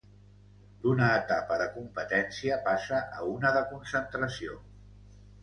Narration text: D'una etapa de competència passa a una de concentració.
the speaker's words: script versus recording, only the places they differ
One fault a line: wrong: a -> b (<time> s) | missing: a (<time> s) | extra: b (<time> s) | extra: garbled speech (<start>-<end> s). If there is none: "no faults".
no faults